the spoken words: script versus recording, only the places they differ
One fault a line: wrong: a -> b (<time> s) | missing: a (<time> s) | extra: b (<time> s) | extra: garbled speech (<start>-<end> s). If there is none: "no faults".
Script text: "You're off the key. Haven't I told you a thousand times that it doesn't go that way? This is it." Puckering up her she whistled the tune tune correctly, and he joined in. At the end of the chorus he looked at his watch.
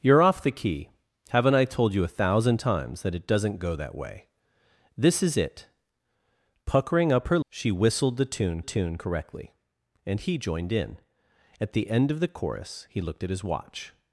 no faults